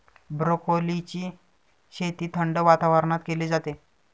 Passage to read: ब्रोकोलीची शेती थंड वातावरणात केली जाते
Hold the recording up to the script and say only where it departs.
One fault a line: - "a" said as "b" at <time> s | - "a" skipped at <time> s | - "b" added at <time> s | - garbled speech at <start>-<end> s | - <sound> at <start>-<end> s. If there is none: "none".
none